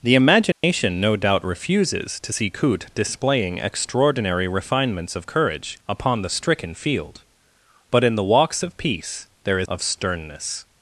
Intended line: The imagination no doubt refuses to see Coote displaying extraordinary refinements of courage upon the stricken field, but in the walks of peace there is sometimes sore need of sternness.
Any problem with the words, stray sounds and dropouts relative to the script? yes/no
yes